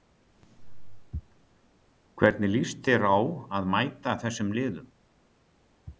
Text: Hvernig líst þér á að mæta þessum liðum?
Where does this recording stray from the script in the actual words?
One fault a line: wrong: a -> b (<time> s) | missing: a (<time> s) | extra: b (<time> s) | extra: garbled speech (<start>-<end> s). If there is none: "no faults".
no faults